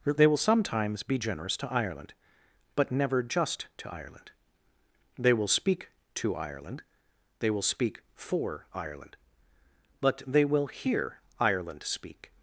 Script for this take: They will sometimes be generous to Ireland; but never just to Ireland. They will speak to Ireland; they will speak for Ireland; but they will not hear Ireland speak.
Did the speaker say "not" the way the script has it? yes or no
no